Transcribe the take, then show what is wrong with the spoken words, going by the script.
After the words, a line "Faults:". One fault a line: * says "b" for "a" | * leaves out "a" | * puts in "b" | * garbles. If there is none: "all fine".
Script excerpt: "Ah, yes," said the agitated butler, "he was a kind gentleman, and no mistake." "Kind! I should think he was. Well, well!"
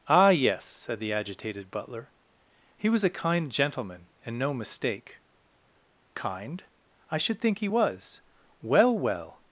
"Ah, yes," said the agitated butler, "he was a kind gentleman, and no mistake." "Kind! I should think he was. Well, well!"
Faults:
all fine